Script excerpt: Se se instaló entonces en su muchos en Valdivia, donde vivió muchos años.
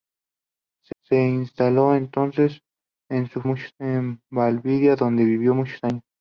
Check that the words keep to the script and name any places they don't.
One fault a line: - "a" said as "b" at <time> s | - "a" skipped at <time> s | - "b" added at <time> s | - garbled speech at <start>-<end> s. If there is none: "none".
none